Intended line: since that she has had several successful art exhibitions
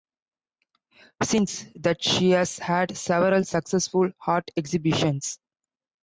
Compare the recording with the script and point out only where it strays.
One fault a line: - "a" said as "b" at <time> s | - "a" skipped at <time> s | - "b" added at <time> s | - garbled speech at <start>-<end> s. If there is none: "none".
none